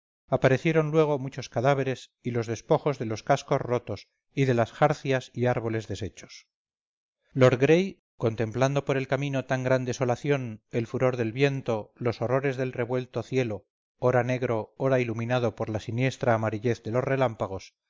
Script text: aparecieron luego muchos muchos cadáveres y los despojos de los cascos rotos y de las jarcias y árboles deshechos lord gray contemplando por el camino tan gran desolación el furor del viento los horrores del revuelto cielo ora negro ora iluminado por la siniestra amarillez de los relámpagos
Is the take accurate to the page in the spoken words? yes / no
no